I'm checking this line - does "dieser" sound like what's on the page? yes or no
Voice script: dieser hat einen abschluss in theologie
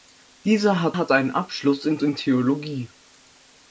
yes